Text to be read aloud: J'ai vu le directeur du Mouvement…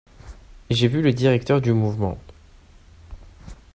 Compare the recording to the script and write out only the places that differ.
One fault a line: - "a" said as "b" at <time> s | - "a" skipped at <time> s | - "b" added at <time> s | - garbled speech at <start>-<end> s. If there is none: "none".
none